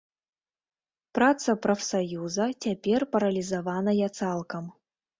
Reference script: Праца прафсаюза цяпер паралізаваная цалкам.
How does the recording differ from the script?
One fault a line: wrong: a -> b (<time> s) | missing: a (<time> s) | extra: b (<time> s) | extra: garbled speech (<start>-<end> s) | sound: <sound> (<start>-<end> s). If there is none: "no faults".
no faults